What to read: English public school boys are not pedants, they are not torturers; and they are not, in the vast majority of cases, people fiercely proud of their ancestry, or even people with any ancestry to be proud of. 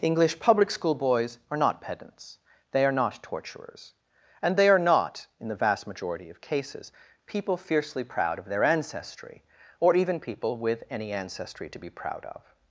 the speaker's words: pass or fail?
pass